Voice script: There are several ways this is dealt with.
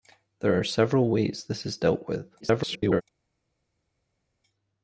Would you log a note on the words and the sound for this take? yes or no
yes